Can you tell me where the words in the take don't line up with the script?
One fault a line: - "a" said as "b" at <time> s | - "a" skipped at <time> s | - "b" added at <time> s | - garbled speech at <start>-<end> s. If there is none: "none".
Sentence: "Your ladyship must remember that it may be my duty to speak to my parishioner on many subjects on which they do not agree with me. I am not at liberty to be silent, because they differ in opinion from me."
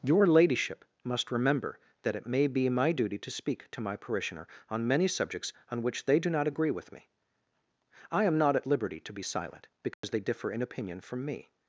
none